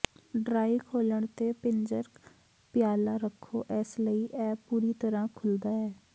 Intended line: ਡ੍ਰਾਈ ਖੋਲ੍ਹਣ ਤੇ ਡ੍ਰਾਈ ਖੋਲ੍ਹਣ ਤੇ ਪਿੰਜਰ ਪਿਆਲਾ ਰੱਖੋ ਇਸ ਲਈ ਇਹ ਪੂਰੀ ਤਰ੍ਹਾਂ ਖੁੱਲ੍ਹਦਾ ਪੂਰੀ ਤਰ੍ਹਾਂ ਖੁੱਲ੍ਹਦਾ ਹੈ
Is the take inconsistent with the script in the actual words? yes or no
yes